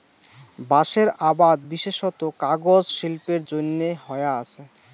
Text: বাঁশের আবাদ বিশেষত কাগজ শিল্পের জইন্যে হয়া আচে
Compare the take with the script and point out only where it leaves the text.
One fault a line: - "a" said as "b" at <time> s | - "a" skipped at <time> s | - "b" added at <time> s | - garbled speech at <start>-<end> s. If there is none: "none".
none